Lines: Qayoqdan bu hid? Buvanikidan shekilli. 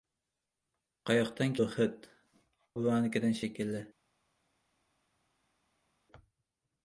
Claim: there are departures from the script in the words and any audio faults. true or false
false